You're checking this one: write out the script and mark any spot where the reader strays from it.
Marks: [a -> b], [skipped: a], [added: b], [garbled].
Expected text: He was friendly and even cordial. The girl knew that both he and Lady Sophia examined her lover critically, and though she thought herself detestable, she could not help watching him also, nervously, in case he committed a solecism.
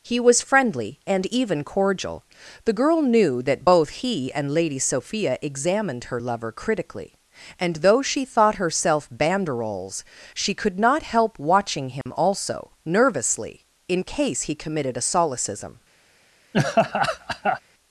He was friendly and even cordial. The girl knew that both he and Lady Sophia examined her lover critically, and though she thought herself [detestable, -> banderoles] she could not help watching him also, nervously, in case he committed a solecism.